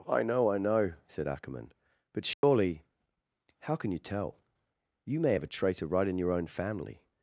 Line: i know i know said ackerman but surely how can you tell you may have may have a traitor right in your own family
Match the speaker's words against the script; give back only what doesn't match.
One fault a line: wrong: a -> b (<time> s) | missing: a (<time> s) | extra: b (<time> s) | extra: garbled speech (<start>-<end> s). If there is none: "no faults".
missing: may have (5.4 s)